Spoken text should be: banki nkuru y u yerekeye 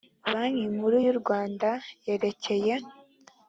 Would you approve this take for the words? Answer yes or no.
no